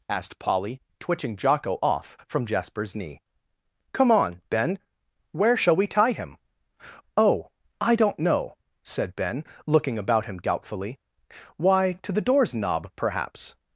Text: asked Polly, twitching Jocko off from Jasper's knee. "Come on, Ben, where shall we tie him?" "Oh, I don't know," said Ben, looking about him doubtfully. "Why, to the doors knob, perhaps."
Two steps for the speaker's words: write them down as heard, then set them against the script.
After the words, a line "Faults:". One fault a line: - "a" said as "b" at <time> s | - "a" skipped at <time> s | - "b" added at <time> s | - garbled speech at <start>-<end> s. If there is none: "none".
asked Polly, twitching Jocko off from Jasper's knee. "Come on, Ben, where shall we tie him?" "Oh, I don't know," said Ben, looking about him doubtfully. "Why, to the doors knob, perhaps."
Faults:
none